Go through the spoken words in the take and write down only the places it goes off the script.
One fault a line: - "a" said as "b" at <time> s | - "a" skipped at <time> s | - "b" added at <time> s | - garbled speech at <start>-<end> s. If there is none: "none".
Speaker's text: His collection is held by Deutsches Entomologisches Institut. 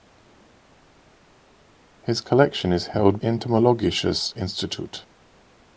- "by Deutsches" skipped at 3.2 s